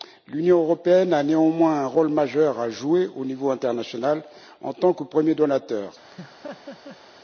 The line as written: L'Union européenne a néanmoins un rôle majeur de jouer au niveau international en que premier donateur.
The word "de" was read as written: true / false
false